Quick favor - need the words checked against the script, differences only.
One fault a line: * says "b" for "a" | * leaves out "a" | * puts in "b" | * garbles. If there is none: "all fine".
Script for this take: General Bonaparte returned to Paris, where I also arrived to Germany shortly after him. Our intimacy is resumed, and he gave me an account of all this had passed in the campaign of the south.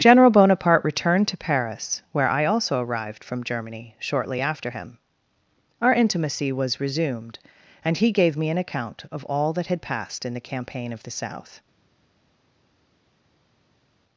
* says "from" for "to"
* says "was" for "is"
* says "that" for "this"